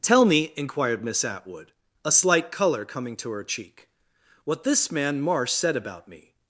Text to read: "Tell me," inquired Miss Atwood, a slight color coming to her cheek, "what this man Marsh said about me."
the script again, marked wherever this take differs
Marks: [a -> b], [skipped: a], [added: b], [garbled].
"Tell me," inquired Miss Atwood, a slight color coming to her cheek, "what this man Marsh said about me."